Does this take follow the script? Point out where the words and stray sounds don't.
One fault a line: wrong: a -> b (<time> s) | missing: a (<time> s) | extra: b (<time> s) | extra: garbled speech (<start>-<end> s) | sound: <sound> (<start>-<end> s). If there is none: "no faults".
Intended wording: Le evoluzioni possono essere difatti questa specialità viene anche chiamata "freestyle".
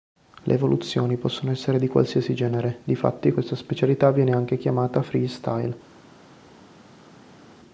extra: di qualsiasi genere (1.8 s)